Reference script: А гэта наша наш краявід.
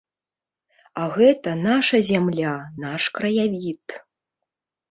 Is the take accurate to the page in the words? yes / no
no